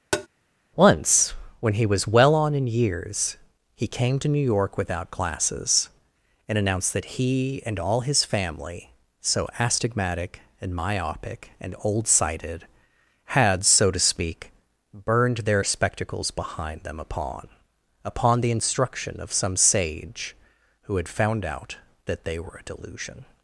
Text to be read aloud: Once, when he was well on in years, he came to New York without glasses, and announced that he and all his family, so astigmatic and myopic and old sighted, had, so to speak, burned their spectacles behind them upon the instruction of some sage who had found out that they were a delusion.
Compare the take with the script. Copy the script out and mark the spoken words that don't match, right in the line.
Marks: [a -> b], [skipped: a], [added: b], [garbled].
Once, when he was well on in years, he came to New York without glasses, and announced that he and all his family, so astigmatic and myopic and old sighted, had, so to speak, burned their spectacles behind them upon [added: upon] the instruction of some sage who had found out that they were a delusion.